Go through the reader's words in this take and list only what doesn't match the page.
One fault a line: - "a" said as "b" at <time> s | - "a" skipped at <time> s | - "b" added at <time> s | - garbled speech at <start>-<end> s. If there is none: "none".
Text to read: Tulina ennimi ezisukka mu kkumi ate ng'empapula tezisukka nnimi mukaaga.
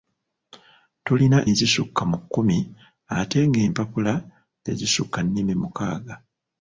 - "ennimi" skipped at 1.4 s